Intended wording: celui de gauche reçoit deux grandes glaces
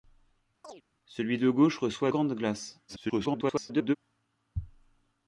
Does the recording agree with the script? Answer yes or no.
no